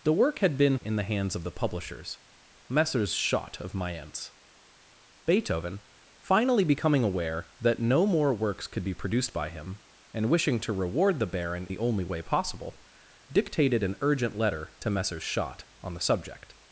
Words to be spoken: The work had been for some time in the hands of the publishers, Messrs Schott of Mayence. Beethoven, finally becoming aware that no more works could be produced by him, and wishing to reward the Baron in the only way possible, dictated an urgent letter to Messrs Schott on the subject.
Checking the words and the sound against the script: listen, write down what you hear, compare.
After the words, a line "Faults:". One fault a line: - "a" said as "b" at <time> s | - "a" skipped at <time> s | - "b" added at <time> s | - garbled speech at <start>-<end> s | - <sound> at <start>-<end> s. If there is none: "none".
The work had been in the hands of the publishers, Messrs Schott of Mayence. Beethoven, finally becoming aware that no more works could be produced by him, and wishing to reward the Baron the only way possible, dictated an urgent letter to Messrs Schott on the subject.
Faults:
- "for some time" skipped at 0.8 s
- "in" skipped at 11.7 s